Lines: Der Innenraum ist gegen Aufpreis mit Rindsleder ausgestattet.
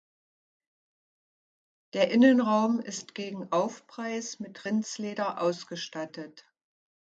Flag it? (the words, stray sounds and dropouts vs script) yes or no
no